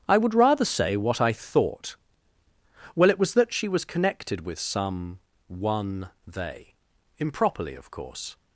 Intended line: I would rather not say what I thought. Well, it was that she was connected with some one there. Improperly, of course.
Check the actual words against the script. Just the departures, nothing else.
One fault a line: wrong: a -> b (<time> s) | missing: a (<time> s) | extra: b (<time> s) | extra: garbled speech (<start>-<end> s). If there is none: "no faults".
missing: not (0.7 s)
wrong: there -> they (6.3 s)